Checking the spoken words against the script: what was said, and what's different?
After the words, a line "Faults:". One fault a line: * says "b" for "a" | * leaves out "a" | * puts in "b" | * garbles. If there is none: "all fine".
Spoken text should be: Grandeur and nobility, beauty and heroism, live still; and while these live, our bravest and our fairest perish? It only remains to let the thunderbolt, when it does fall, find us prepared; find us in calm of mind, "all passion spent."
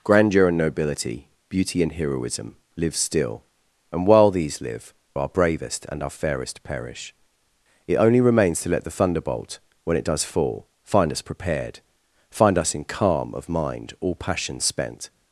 Grandeur and nobility, beauty and heroism, live still; and while these live, our bravest and our fairest perish? It only remains to let the thunderbolt, when it does fall, find us prepared; find us in calm of mind, "all passion spent."
Faults:
all fine